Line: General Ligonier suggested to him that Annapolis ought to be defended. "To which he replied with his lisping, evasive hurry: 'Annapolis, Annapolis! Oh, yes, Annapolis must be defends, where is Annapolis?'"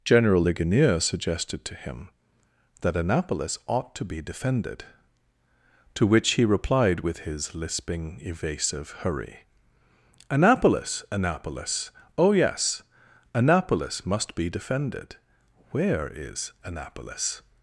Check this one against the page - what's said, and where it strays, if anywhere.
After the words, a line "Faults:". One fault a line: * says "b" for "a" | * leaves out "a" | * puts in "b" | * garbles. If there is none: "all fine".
General Ligonier suggested to him that Annapolis ought to be defended. "To which he replied with his lisping, evasive hurry: 'Annapolis, Annapolis! Oh, yes, Annapolis must be defended, where is Annapolis?'"
Faults:
* says "defended" for "defends"